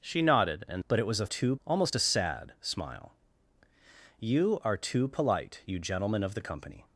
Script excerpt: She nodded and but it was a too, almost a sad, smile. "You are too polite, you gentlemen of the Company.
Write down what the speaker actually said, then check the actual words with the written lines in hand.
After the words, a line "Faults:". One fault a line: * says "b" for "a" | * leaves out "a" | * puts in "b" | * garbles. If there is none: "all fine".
She nodded and but it was a too, almost a sad, smile. "You are too polite, you gentlemen of the Company.
Faults:
all fine